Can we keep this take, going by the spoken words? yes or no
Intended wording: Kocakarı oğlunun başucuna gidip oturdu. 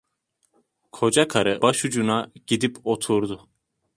no